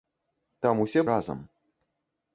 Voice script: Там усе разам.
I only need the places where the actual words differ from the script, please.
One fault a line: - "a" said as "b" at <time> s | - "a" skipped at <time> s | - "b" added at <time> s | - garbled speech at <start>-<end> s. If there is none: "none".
none